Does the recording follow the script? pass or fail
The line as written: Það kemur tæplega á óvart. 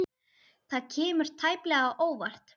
pass